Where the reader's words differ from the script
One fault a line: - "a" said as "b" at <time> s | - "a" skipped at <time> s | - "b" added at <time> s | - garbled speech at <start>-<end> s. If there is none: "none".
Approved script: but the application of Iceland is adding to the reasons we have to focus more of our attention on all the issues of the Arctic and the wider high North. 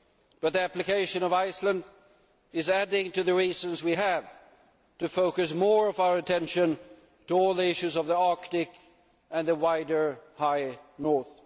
none